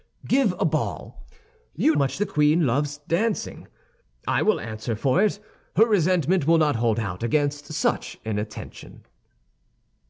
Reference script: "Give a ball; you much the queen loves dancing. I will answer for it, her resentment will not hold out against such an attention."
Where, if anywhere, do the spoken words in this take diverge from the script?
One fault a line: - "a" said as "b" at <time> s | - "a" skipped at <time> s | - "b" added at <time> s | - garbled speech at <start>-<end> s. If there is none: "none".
none